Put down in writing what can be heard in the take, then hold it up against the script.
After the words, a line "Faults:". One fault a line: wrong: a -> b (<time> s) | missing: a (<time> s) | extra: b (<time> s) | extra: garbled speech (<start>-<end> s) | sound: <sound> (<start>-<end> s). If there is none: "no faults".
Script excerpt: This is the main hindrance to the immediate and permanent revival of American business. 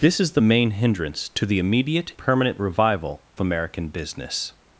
This is the main hindrance to the immediate permanent revival American business.
Faults:
missing: and (2.1 s)
missing: of (3.2 s)